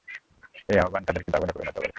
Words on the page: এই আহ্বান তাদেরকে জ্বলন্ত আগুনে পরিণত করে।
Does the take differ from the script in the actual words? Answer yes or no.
yes